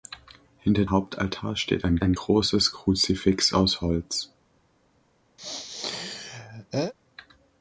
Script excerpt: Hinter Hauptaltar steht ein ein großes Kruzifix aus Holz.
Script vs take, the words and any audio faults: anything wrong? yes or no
yes